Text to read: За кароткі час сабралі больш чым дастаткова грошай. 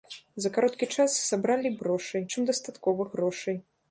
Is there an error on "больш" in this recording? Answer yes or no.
yes